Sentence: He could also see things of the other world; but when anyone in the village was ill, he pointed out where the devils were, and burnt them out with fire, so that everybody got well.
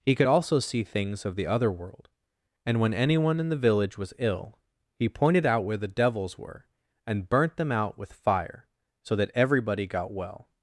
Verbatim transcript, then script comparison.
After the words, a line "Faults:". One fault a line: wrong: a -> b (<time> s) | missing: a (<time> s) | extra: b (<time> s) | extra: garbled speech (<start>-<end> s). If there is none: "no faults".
He could also see things of the other world; and when anyone in the village was ill, he pointed out where the devils were, and burnt them out with fire, so that everybody got well.
Faults:
wrong: but -> and (2.6 s)